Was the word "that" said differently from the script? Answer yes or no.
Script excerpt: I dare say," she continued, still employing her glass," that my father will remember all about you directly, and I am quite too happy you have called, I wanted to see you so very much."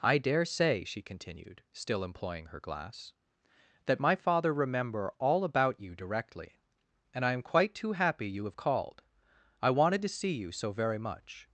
no